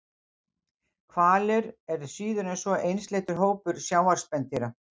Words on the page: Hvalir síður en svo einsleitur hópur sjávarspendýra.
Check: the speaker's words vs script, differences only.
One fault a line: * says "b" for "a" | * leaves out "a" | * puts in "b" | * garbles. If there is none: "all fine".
* puts in "eru"